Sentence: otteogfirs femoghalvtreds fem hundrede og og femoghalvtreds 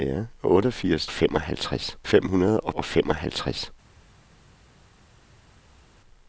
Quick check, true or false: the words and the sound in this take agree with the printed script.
true